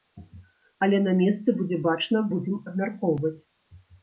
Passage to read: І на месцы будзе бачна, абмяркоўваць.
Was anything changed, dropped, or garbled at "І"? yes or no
yes